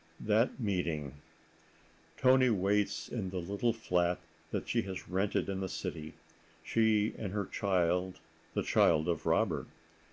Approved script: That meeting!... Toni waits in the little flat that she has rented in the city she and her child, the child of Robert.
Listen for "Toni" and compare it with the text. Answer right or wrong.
right